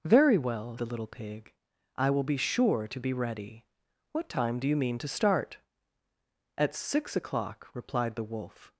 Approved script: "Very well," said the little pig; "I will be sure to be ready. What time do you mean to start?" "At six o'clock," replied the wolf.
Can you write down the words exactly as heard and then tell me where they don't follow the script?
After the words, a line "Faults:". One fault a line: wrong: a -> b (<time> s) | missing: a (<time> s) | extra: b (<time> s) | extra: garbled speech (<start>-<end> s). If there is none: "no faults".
"Very well," the little pig; "I will be sure to be ready. What time do you mean to start?" "At six o'clock," replied the wolf.
Faults:
missing: said (0.8 s)